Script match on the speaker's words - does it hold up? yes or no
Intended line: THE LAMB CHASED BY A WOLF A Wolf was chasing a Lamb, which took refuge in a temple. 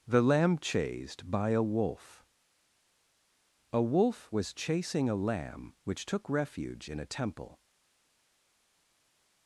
yes